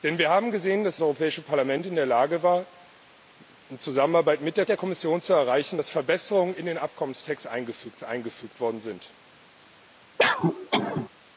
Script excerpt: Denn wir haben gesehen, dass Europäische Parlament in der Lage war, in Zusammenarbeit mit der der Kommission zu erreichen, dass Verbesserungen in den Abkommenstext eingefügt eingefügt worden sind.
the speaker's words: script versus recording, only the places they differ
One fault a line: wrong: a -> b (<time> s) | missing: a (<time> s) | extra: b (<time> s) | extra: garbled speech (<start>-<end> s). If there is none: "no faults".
no faults